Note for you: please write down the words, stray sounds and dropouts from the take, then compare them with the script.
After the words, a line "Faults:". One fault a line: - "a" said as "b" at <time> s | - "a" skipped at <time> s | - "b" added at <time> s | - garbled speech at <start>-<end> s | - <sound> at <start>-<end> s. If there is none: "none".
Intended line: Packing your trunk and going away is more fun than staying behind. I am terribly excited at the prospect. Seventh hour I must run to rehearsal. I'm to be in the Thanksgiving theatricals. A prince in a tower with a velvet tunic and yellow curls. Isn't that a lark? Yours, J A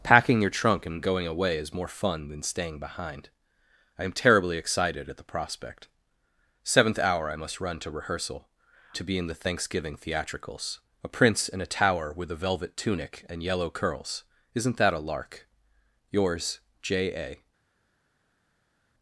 Packing your trunk and going away is more fun than staying behind. I am terribly excited at the prospect. Seventh hour I must run to rehearsal. To be in the Thanksgiving theatricals. A prince in a tower with a velvet tunic and yellow curls. Isn't that a lark? Yours, J A
Faults:
- "I'm" skipped at 8.5 s